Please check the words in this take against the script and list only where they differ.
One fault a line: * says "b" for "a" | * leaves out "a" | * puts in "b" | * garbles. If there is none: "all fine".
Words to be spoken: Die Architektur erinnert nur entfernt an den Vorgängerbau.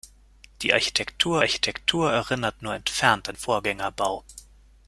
* puts in "Architektur"
* leaves out "den"